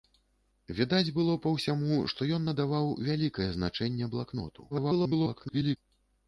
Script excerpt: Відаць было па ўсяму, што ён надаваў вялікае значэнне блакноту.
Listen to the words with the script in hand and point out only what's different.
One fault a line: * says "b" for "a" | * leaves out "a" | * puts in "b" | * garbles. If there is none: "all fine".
* garbles